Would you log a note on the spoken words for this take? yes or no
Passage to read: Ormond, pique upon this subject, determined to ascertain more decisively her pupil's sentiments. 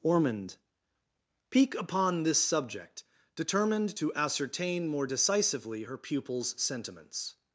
no